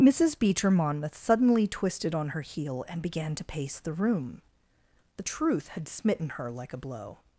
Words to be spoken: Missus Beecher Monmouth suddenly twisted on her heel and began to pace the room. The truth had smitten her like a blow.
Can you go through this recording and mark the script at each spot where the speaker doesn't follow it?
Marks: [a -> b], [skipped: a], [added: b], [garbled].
Missus Beecher Monmouth suddenly twisted on her heel and began to pace the room. The truth had smitten her like a blow.